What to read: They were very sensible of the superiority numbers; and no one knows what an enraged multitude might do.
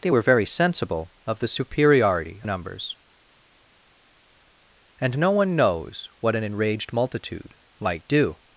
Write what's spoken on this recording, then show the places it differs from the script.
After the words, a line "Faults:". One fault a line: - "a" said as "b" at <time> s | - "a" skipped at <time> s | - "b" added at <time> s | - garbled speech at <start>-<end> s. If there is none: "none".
They were very sensible of the superiority numbers; and no one knows what an enraged multitude might do.
Faults:
none